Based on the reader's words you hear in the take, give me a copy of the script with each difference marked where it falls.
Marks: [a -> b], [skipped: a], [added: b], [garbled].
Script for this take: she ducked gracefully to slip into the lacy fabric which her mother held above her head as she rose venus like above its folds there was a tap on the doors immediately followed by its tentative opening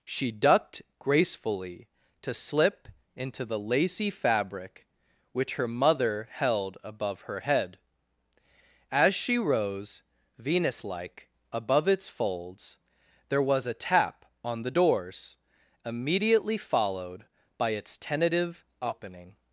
she ducked gracefully to slip into the lacy fabric which her mother held above her head as she rose venus like above its folds there was a tap on the doors immediately followed by its tentative opening